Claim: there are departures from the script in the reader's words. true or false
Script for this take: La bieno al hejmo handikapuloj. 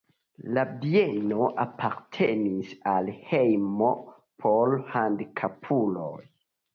true